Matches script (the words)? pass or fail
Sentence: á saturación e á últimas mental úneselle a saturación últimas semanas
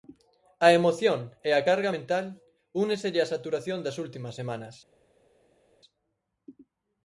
fail